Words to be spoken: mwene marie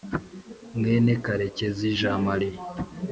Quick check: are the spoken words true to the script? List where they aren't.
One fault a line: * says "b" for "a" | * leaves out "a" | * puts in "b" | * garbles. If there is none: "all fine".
* puts in "karekezi jean"